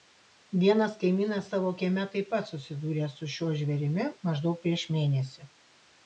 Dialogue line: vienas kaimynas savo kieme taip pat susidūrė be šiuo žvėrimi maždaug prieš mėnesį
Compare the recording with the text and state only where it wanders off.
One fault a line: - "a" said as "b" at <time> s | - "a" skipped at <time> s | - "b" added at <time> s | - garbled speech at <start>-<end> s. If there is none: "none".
- "be" said as "su" at 3.2 s